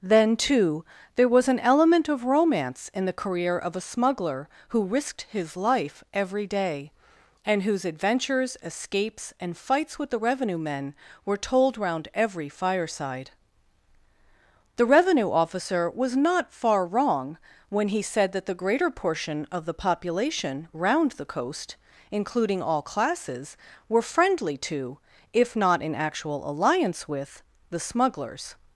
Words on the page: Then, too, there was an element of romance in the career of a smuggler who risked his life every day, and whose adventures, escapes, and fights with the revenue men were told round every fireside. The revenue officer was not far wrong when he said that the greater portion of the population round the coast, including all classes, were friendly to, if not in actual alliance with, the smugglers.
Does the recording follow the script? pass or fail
pass